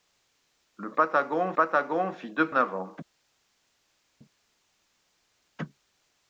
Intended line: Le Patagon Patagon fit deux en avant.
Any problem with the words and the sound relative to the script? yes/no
no